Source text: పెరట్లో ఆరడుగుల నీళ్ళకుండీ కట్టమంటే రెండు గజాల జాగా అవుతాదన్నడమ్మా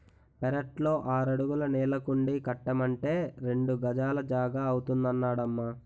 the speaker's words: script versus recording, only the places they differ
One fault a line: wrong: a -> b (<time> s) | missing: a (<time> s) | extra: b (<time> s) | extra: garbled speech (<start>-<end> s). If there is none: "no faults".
no faults